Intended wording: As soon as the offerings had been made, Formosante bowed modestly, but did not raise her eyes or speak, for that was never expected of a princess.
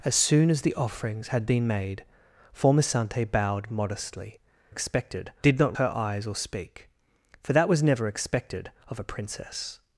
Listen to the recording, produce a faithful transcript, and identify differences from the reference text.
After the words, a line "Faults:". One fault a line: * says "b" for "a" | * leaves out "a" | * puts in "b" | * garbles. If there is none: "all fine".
As soon as the offerings had been made, Formosante bowed modestly, expected did not her eyes or speak, for that was never expected of a princess.
Faults:
* says "expected" for "but"
* leaves out "raise"